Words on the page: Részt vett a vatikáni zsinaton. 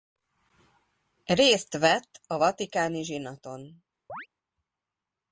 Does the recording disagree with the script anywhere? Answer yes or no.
no